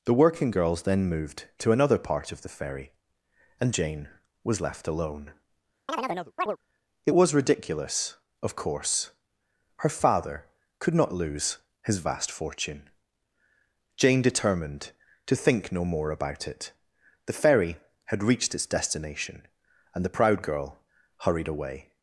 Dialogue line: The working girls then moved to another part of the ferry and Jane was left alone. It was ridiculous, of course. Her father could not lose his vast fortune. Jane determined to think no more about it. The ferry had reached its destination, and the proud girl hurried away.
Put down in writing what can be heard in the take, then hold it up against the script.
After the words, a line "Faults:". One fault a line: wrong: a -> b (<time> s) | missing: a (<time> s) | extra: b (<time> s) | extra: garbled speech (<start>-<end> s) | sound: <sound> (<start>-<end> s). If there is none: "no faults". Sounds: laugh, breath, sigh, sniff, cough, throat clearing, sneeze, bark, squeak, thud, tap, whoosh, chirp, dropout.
The working girls then moved to another part of the ferry and Jane was left alone. It was ridiculous, of course. Her father could not lose his vast fortune. Jane determined to think no more about it. The ferry had reached its destination, and the proud girl hurried away.
Faults:
sound: chirp (5.9-6.6 s)